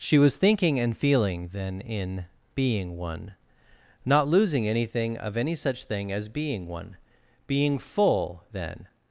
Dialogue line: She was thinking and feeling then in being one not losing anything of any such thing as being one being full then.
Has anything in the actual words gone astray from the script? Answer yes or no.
no